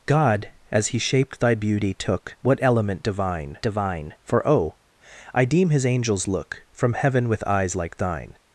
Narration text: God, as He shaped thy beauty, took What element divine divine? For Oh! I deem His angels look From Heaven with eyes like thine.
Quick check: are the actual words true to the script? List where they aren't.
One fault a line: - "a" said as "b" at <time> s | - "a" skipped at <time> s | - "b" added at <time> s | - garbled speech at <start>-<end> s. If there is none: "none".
none